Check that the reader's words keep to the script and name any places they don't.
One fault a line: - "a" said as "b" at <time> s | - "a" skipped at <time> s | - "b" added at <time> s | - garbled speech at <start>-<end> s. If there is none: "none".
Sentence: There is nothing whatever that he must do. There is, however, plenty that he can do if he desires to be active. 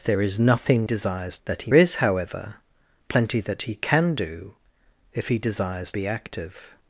- "whatever" said as "desires" at 0.8 s
- "must do There" skipped at 1.7 s
- "to" skipped at 5.9 s